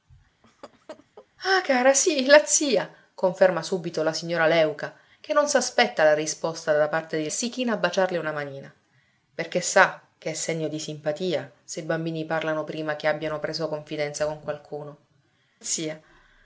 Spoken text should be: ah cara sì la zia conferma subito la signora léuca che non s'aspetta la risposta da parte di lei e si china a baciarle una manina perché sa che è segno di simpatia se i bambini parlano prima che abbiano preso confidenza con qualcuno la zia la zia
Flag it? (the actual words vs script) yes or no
yes